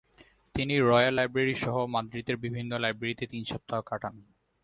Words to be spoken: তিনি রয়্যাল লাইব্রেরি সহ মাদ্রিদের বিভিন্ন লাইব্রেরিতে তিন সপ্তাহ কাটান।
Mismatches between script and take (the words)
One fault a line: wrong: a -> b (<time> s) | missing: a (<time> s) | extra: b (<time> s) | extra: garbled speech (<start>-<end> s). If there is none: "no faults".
no faults